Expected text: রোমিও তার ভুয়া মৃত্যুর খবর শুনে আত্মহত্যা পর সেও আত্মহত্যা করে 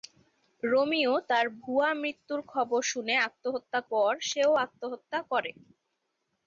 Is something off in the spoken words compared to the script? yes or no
no